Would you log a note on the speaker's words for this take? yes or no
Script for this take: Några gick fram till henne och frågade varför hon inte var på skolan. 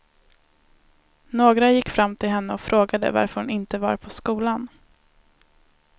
no